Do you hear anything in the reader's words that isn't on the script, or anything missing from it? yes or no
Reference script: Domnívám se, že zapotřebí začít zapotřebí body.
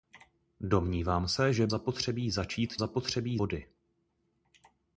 no